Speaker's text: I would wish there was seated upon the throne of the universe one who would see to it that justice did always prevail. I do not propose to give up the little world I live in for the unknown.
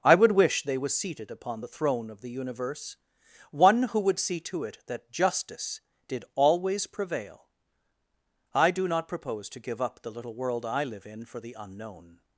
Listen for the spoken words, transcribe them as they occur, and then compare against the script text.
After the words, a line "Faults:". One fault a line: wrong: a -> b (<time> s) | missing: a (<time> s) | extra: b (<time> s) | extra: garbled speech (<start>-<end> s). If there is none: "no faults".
I would wish they was seated upon the throne of the universe one who would see to it that justice did always prevail. I do not propose to give up the little world I live in for the unknown.
Faults:
wrong: there -> they (0.6 s)